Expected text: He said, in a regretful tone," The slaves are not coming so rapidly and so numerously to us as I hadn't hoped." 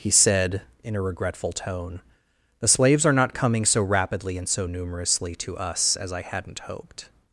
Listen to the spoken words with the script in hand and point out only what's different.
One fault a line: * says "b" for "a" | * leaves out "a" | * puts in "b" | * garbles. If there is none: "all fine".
all fine